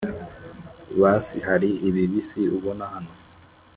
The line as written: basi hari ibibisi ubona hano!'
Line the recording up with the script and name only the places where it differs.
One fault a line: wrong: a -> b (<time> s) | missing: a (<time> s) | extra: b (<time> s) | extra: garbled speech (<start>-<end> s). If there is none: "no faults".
no faults